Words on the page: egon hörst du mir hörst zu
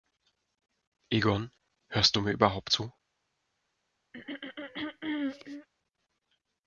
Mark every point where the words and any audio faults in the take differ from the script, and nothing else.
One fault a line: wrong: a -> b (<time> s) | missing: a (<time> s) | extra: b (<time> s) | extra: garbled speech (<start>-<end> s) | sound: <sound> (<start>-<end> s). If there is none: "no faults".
wrong: hörst -> überhaupt (2.3 s)
sound: throat clearing (4.1-5.7 s)